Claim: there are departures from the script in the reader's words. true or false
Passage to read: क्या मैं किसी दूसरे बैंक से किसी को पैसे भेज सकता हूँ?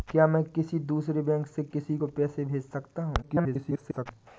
true